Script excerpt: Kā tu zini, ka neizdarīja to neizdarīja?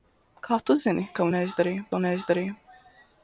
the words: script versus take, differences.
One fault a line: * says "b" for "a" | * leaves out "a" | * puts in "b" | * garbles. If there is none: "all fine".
all fine